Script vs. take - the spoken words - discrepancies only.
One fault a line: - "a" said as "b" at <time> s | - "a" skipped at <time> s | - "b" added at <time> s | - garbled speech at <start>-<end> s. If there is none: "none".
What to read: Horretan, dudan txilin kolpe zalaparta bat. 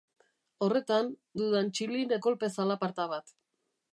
none